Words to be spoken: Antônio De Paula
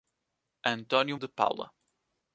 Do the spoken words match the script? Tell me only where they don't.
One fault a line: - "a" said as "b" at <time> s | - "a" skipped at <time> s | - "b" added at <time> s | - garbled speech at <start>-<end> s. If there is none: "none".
none